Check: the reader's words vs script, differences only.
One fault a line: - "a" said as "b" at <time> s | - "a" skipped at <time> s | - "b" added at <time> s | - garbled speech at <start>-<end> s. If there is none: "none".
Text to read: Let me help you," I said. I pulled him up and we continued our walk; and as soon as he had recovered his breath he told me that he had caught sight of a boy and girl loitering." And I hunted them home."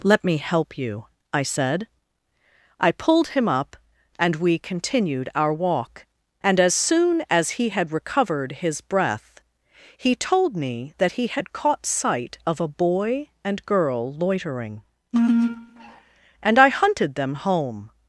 none